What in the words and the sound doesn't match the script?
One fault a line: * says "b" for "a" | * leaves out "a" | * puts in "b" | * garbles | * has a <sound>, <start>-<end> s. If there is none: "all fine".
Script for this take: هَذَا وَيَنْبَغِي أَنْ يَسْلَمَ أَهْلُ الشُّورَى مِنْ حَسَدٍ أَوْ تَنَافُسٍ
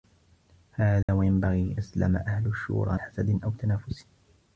* has a dropout, 1.0-1.1 s
* leaves out "أَنْ"
* leaves out "مِنْ"